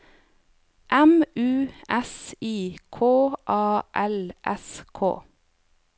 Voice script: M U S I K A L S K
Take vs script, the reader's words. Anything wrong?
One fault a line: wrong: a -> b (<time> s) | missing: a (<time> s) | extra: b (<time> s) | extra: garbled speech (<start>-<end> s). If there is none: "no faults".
no faults